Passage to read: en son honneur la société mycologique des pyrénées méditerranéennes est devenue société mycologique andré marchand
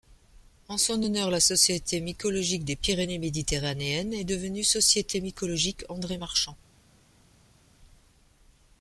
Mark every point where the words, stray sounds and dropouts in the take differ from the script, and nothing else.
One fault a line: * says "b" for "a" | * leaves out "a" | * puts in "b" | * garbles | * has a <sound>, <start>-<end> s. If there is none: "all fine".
all fine